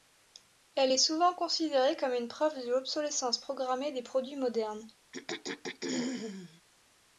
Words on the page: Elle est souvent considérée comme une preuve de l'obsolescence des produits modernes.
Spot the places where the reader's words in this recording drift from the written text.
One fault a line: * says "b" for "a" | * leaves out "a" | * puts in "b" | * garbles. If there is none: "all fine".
* puts in "programmée"